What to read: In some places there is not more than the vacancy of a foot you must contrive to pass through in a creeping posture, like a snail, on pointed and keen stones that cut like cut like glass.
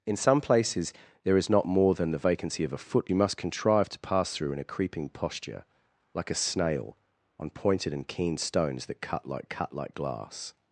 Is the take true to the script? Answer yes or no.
yes